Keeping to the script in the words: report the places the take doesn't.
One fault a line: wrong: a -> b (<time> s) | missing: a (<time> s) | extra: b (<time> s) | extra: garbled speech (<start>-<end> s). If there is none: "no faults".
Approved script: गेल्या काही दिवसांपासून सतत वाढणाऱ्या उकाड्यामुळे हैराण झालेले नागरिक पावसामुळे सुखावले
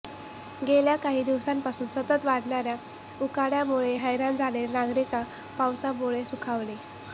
no faults